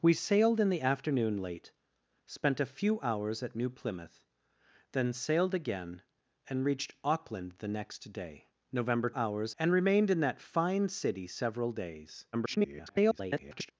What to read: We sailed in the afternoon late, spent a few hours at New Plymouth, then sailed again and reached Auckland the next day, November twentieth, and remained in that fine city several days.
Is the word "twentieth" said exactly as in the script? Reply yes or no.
no